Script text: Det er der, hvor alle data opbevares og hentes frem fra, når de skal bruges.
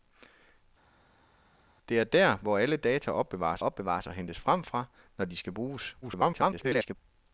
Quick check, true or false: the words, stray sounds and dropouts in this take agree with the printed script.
false